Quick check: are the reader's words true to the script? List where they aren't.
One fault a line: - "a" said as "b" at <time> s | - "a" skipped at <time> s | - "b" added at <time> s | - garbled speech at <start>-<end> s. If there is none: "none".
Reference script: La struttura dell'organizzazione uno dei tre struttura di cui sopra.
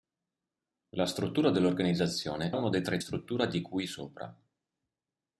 none